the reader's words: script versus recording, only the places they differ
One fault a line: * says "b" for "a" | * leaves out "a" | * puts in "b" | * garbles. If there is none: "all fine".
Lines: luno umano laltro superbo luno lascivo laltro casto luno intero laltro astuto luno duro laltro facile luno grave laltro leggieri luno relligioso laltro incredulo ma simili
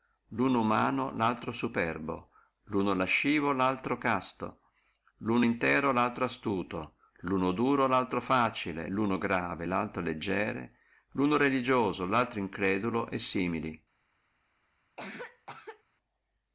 * says "e" for "ma"